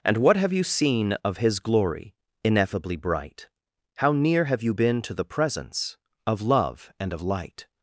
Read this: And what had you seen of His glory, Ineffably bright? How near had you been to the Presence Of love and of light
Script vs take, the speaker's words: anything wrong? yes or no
yes